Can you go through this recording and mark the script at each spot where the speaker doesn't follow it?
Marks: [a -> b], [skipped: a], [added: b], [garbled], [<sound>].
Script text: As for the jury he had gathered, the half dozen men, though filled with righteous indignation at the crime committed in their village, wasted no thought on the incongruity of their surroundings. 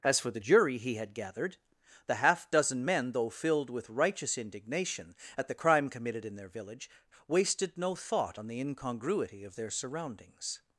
As for the jury he had gathered, the half dozen men, though filled with righteous indignation at the crime committed in their village, wasted no thought on the incongruity of their surroundings.